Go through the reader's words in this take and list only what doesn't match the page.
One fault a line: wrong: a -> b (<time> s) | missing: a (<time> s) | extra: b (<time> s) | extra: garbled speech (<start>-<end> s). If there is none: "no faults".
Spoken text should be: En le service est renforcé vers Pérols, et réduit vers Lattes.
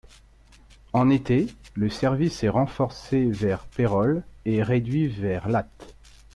extra: été (1.1 s)